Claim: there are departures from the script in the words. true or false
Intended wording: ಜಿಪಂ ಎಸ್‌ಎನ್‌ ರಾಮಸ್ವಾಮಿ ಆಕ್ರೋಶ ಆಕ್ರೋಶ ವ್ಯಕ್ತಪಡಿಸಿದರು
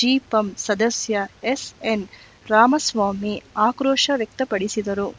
true